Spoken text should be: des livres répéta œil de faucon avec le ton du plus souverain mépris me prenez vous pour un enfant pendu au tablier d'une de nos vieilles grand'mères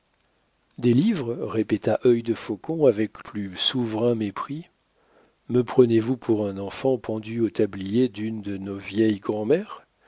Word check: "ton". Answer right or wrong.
wrong